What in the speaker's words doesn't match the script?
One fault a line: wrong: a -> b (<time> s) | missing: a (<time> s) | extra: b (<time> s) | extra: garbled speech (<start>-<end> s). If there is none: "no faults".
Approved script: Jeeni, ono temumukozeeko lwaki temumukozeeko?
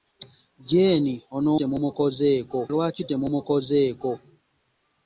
no faults